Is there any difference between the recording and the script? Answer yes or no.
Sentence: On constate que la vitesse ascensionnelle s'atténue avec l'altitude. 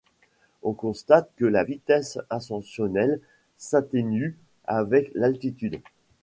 no